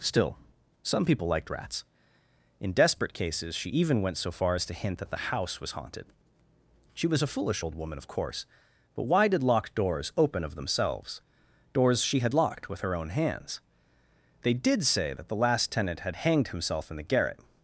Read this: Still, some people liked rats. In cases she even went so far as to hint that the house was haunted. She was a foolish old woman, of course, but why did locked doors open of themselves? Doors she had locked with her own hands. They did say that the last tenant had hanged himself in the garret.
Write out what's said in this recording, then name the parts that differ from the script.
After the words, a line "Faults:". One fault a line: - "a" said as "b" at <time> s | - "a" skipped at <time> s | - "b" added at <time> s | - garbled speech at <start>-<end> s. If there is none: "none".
Still, some people liked rats. In desperate cases she even went so far as to hint that the house was haunted. She was a foolish old woman, of course, but why did locked doors open of themselves? Doors she had locked with her own hands. They did say that the last tenant had hanged himself in the garret.
Faults:
- "desperate" added at 2.7 s